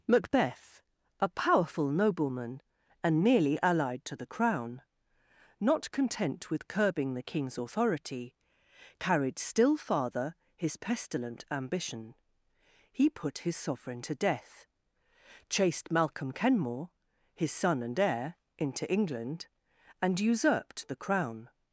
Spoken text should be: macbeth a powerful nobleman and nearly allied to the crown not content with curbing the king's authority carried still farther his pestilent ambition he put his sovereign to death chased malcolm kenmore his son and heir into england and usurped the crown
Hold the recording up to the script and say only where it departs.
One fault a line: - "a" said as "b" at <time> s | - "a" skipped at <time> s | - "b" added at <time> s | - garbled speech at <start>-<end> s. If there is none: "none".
none